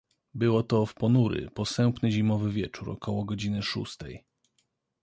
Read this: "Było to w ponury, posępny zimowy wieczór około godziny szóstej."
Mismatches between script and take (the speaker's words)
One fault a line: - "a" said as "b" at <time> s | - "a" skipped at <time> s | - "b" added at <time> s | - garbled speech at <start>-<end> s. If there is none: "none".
none